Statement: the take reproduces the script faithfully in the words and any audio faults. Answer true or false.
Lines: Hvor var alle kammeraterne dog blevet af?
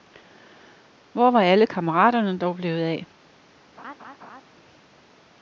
false